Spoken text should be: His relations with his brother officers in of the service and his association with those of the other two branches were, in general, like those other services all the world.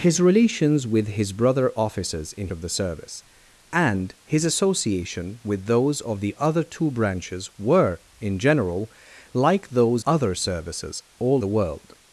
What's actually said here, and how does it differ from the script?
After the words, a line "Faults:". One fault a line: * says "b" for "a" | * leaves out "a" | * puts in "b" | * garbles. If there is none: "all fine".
His relations with his brother officers in of the service and his association with those of the other two branches were, in general, like those other services all the world.
Faults:
all fine